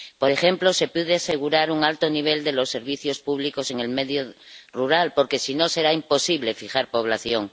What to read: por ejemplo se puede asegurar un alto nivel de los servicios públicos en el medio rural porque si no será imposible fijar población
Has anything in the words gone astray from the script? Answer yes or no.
no